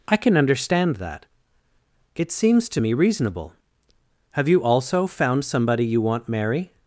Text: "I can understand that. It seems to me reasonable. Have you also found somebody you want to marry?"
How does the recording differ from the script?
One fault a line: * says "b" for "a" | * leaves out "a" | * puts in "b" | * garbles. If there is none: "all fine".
* leaves out "to"